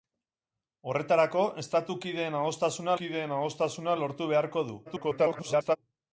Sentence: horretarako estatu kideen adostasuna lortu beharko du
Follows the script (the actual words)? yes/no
no